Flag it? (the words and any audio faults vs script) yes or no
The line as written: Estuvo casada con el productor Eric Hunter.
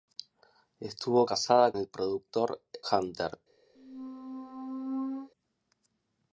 yes